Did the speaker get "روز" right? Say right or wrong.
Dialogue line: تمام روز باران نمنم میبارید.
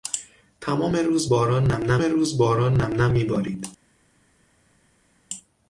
right